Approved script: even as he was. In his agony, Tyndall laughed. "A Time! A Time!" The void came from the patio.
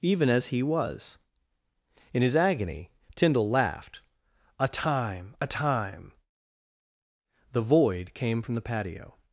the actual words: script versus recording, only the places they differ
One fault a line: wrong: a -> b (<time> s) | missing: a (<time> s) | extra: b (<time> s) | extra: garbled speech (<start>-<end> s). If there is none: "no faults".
no faults